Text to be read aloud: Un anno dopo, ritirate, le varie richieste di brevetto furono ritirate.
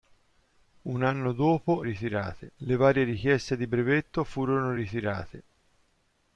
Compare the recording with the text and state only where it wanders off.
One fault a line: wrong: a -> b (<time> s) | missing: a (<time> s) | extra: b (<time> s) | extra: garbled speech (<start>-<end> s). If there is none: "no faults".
no faults